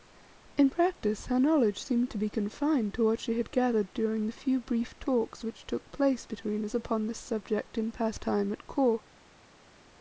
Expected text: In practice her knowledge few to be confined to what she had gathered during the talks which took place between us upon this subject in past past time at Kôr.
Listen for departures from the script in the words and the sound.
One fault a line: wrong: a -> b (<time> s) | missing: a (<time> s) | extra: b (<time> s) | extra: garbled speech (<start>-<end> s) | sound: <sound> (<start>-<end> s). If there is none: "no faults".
wrong: few -> seemed (1.8 s)
extra: few brief (4.3 s)
missing: past (8.2 s)